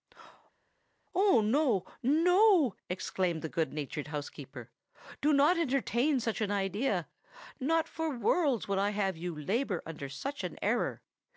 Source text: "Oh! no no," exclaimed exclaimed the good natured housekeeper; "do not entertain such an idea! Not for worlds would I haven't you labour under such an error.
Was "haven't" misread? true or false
true